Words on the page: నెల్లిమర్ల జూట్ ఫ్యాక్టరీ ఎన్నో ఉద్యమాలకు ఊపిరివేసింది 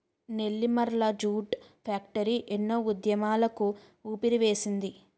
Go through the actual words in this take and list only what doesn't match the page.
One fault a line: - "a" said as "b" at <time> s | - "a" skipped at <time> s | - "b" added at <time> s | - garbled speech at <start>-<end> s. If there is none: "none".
none